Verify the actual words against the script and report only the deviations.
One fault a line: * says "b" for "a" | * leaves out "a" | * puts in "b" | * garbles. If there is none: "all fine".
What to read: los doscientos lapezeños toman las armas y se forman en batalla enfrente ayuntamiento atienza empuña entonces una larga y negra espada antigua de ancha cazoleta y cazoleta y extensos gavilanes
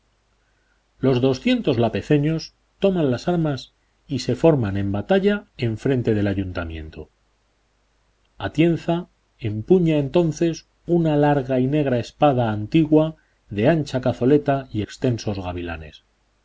* puts in "del"
* leaves out "cazoleta y"